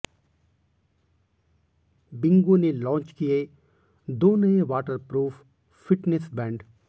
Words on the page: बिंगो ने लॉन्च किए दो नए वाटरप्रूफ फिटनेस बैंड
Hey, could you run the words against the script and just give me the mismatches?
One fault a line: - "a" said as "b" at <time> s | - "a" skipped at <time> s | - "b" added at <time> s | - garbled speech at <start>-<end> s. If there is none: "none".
none